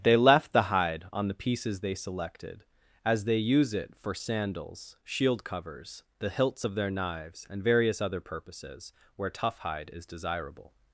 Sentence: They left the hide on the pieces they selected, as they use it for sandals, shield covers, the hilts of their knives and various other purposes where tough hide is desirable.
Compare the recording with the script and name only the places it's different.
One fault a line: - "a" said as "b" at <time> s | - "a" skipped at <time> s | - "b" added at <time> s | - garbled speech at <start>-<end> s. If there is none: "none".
none